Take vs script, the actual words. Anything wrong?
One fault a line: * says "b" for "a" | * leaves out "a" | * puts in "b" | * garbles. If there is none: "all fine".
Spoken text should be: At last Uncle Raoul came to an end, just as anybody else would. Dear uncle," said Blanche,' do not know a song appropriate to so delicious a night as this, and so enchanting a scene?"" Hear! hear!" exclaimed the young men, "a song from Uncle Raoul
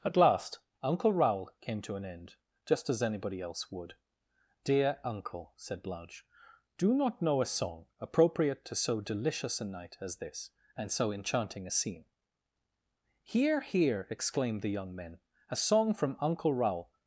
all fine